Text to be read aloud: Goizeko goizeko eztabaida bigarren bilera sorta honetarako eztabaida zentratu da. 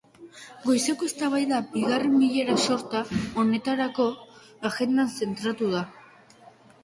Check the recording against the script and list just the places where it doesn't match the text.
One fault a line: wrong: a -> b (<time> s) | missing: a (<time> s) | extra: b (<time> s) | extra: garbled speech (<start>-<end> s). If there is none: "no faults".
missing: goizeko (1.1 s)
wrong: eztabaida -> agendan (4.7 s)